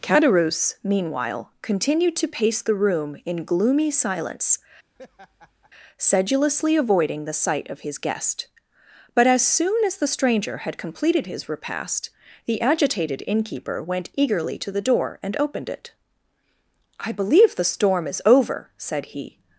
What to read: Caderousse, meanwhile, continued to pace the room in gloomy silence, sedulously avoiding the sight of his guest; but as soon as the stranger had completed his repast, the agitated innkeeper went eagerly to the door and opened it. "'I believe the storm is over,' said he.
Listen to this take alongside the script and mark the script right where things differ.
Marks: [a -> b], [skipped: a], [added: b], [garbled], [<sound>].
Caderousse, meanwhile, continued to pace the room in gloomy silence, [laugh] sedulously avoiding the sight of his guest; but as soon as the stranger had completed his repast, the agitated innkeeper went eagerly to the door and opened it. "'I believe the storm is over,' said he.